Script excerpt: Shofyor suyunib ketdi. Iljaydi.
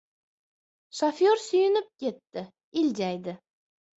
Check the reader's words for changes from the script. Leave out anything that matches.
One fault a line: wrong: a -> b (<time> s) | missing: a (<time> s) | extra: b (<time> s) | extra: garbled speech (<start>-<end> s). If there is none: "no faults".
no faults